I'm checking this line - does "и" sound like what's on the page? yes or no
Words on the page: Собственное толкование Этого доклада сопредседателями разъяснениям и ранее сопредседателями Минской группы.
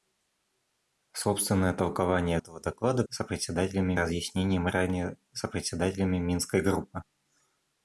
yes